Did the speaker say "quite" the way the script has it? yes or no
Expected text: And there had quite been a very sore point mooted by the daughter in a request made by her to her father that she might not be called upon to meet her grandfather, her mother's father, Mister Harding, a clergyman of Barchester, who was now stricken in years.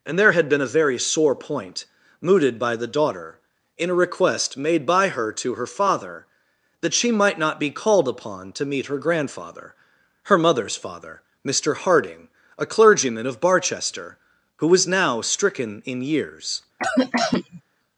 no